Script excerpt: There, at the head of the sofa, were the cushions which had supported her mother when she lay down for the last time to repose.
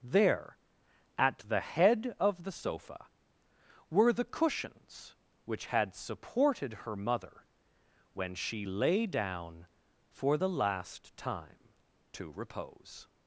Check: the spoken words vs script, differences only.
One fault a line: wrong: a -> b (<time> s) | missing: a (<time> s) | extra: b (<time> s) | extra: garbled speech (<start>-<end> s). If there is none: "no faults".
no faults